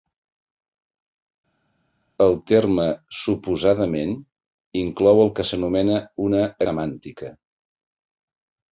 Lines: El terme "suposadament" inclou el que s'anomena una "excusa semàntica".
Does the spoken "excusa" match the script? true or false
false